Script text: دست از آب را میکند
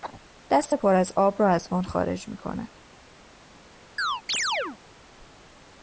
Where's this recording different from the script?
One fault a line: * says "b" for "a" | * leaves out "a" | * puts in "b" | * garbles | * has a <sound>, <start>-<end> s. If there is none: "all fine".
* puts in "پر"
* puts in "از وان خارج"
* has a chirp, 4.0-4.8 s